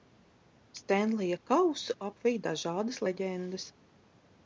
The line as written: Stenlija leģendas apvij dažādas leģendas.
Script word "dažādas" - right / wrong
right